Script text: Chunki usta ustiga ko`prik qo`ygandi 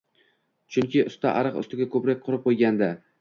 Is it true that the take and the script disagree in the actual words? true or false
true